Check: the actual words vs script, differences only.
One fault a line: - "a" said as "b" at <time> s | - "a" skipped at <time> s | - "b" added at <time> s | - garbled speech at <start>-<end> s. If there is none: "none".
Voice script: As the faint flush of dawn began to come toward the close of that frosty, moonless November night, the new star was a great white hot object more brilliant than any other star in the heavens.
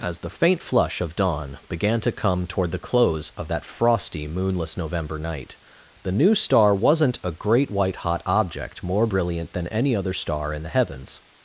- "was" said as "wasn't" at 6.7 s